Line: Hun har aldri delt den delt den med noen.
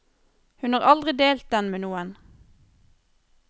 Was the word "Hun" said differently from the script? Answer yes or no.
no